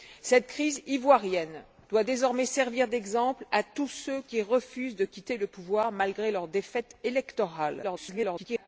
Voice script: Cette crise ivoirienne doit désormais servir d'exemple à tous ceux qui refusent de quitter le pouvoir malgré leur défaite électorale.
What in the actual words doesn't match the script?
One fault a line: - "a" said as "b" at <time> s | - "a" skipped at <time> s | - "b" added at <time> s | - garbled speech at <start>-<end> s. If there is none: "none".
- garbled speech at 7.8-8.7 s